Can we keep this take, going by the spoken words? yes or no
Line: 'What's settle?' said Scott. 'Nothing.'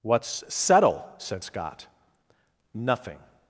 yes